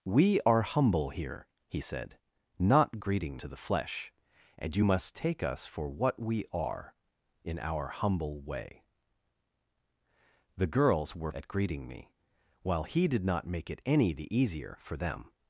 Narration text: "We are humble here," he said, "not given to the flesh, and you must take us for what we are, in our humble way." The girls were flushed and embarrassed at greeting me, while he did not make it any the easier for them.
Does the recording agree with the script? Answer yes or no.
no